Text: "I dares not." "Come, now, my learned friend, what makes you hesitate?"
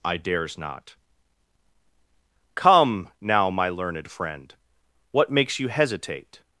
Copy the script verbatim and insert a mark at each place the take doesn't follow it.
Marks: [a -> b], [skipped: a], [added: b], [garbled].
"I dares not." "Come, now, my learned friend, what makes you hesitate?"